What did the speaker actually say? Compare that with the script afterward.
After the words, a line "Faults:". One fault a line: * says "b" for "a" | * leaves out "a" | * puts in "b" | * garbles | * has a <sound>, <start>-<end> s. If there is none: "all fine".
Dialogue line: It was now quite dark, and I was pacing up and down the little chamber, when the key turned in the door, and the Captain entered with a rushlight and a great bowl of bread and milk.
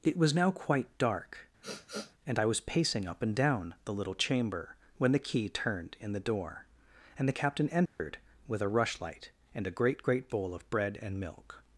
It was now quite dark, and I was pacing up and down the little chamber, when the key turned in the door, and the Captain entered with a rushlight and a great great bowl of bread and milk.
Faults:
* has a sniff, 1.6-2.1 s
* has a dropout, 7.9-8.0 s
* puts in "great"